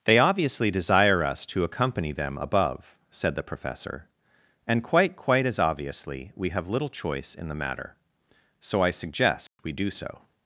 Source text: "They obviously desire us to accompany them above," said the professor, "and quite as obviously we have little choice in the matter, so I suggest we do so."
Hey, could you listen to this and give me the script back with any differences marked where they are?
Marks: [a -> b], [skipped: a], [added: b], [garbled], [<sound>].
"They obviously desire us to accompany them above," said the professor, "and quite [added: quite] as obviously we have little choice in the matter, so I suggest [dropout] we do so."